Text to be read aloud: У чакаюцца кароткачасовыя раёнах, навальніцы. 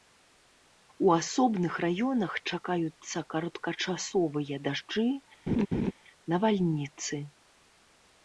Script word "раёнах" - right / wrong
wrong